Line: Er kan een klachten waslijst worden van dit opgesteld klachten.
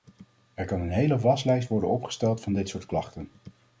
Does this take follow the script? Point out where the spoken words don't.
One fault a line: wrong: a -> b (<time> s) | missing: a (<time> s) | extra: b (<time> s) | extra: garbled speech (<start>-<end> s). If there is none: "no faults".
wrong: klachten -> hele (0.9 s)
extra: opgesteld (1.9 s)
wrong: opgesteld -> soort (2.7 s)